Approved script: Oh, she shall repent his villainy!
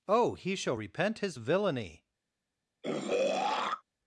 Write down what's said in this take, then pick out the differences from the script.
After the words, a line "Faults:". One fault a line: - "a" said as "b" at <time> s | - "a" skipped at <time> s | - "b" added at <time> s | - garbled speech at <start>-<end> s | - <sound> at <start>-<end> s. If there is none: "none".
Oh, he shall repent his villainy!
Faults:
- "she" said as "he" at 0.3 s
- throat clearing at 2.8-3.8 s